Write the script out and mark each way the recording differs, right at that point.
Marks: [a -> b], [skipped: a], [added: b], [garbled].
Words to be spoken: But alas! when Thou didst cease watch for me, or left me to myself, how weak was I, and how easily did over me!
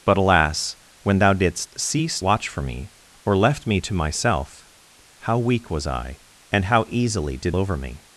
But alas! when Thou didst cease watch for me, or left me to myself, how weak was I, and how easily did over me!